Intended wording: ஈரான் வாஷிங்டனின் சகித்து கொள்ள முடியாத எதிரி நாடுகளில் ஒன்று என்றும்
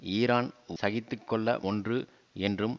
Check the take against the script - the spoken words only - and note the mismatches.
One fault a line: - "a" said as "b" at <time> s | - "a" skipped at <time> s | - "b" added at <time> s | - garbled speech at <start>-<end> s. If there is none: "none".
- "வாஷிங்டனின்" skipped at 0.5 s
- "முடியாத எதிரி நாடுகளில்" skipped at 1.5 s